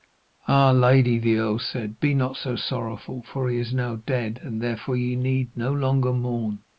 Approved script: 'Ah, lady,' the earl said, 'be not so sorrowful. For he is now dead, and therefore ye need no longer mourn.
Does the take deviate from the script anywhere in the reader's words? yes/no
no